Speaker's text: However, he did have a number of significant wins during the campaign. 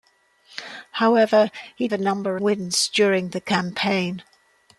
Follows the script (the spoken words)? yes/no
no